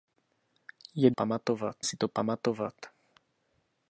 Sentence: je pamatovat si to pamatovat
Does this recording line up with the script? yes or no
yes